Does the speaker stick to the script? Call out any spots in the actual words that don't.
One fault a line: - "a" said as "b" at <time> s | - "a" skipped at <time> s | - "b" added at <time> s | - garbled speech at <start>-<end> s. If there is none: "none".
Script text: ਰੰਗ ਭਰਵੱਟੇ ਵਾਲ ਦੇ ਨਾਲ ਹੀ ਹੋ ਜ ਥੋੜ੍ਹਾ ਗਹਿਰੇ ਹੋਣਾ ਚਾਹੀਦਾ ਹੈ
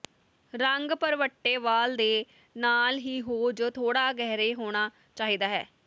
none